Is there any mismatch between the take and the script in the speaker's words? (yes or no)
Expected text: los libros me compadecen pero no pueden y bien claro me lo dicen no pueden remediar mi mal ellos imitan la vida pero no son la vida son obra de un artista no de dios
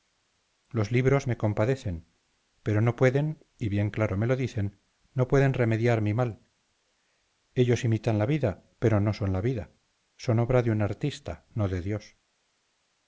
no